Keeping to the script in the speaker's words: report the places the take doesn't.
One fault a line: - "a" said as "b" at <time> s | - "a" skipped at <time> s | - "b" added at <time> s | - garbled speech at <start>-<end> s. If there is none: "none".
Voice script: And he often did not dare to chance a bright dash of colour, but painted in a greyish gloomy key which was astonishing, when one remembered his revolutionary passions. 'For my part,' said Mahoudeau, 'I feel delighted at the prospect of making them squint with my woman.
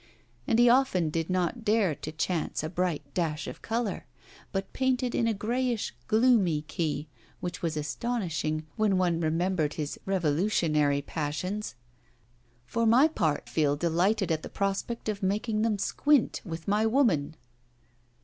- "said Mahoudeau I" skipped at 13.5 s